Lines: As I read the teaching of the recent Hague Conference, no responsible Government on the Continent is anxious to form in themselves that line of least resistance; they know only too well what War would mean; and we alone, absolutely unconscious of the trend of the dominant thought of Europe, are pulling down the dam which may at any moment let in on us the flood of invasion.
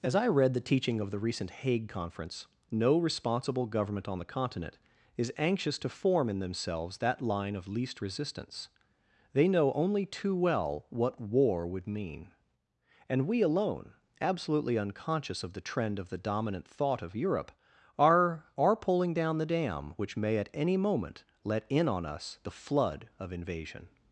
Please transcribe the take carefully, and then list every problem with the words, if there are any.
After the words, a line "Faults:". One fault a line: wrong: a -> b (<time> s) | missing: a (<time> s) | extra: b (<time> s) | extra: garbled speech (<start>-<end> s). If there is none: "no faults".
As I read the teaching of the recent Hague Conference, no responsible Government on the Continent is anxious to form in themselves that line of least resistance; they know only too well what War would mean; and we alone, absolutely unconscious of the trend of the dominant thought of Europe, are are pulling down the dam which may at any moment let in on us the flood of invasion.
Faults:
extra: are (18.6 s)